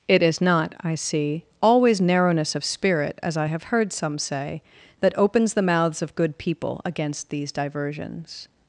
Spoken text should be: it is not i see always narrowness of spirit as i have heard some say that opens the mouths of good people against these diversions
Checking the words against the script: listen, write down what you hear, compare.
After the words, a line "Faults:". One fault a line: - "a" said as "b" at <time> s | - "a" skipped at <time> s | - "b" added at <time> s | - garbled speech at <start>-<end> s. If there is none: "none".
it is not i see always narrowness of spirit as i have heard some say that opens the mouths of good people against these diversions
Faults:
none